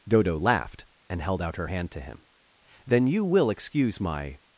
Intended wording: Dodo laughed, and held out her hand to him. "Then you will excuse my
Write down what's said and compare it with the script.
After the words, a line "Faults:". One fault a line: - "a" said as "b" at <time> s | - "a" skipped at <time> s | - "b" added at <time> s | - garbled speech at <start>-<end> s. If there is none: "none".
Dodo laughed, and held out her hand to him. "Then you will excuse my
Faults:
none